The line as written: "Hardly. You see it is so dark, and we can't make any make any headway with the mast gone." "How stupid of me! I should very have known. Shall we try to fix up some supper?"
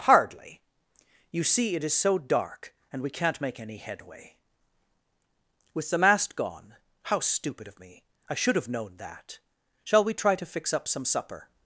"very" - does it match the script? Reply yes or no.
no